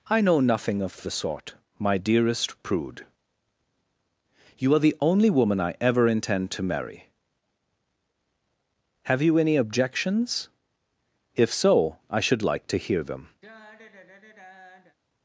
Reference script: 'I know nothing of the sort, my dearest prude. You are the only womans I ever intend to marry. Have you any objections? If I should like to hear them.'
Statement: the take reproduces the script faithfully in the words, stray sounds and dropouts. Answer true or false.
false